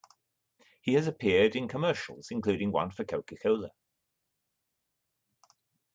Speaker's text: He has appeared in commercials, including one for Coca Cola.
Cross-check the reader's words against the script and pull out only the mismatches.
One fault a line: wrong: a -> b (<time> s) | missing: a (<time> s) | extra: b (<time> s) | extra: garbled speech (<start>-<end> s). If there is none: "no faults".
no faults